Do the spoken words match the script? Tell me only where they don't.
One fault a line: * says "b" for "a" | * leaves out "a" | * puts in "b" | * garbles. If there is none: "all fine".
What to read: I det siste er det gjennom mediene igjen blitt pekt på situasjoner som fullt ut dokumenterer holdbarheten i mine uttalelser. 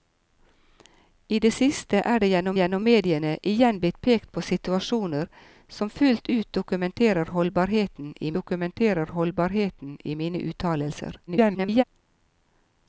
* puts in "gjennom"
* puts in "dokumenterer holdbarheten i"
* garbles